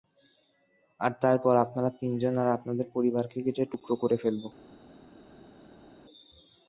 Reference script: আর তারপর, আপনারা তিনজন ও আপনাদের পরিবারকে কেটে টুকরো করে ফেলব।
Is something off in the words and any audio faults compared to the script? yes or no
yes